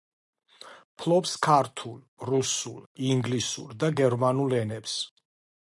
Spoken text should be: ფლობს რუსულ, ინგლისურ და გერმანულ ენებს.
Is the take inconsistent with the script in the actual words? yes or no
yes